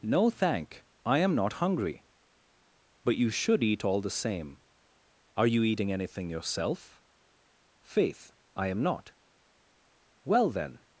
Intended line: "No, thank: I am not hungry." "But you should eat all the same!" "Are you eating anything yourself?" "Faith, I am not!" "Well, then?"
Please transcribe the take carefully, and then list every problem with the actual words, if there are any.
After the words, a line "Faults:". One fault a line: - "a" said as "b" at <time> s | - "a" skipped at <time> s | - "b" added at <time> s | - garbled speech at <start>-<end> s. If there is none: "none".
"No, thank: I am not hungry." "But you should eat all the same!" "Are you eating anything yourself?" "Faith, I am not!" "Well, then?"
Faults:
none